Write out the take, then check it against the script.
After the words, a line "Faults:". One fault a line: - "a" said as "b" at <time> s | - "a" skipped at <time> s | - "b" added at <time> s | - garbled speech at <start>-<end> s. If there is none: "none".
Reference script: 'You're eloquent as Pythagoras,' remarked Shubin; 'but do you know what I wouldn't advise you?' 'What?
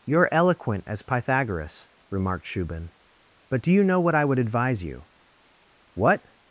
'You're eloquent as Pythagoras,' remarked Shubin; 'but do you know what I would advise you?' 'What?
Faults:
- "wouldn't" said as "would" at 4.2 s